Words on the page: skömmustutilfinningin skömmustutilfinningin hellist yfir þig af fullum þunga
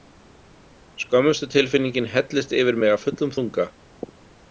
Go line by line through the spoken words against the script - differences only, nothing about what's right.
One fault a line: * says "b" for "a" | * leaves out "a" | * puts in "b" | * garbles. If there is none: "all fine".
* leaves out "skömmustutilfinningin"
* says "mig" for "þig"